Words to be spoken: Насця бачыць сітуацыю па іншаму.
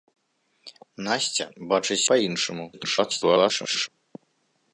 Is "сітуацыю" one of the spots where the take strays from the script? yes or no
yes